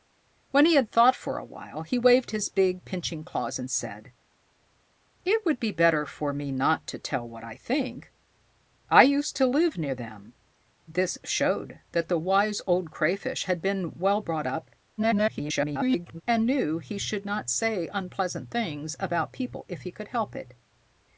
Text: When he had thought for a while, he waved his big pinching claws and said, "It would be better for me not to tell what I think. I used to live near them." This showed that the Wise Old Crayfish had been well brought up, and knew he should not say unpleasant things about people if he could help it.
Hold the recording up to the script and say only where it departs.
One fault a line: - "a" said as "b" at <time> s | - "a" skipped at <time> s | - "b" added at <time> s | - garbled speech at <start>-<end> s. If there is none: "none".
- garbled speech at 15.0-16.2 s